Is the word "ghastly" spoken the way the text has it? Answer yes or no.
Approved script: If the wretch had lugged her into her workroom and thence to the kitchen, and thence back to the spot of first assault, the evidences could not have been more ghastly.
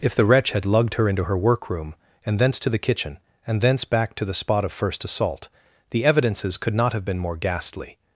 yes